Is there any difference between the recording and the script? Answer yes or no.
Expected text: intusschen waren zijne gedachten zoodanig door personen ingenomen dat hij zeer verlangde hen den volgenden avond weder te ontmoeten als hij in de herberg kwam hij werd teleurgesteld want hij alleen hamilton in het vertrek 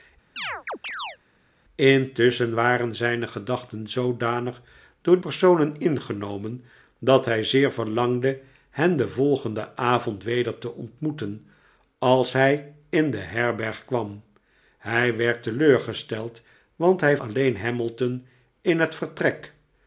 no